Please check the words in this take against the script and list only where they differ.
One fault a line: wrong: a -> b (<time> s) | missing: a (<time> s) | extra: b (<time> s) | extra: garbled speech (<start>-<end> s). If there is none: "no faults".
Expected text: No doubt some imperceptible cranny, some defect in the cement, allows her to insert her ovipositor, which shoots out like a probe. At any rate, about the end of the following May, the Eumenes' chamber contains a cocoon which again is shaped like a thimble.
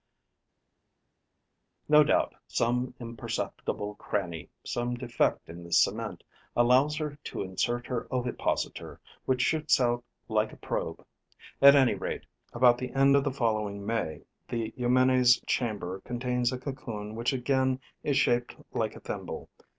no faults